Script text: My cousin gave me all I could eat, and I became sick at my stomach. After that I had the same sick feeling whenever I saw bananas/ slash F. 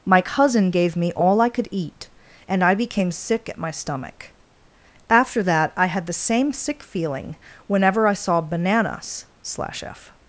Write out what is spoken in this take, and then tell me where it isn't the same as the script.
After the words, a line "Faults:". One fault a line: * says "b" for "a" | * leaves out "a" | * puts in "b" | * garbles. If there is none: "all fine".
My cousin gave me all I could eat, and I became sick at my stomach. After that I had the same sick feeling whenever I saw bananas/ slash F.
Faults:
all fine